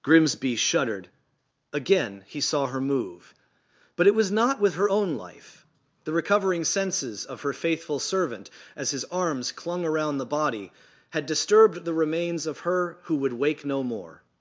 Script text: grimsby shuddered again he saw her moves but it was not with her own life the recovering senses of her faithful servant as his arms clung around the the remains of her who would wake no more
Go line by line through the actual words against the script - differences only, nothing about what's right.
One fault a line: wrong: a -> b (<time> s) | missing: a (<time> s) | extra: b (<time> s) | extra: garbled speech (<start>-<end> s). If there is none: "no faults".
wrong: moves -> move (2.8 s)
extra: body had disturbed (10.2 s)